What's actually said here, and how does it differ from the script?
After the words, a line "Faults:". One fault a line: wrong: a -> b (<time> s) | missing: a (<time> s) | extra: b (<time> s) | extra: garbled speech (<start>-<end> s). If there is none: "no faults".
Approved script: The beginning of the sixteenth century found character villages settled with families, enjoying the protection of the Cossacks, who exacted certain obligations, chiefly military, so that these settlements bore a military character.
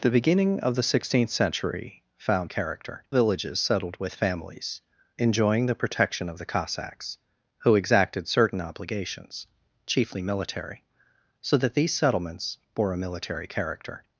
The beginning of the sixteenth century found character villages settled with families, enjoying the protection of the Cossacks, who exacted certain obligations, chiefly military, so that these settlements bore a military character.
Faults:
no faults